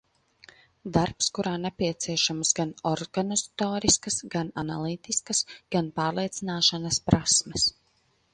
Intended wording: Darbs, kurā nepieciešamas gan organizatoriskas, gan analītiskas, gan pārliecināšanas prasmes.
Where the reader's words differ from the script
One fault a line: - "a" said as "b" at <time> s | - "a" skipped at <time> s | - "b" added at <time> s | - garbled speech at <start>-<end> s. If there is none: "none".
none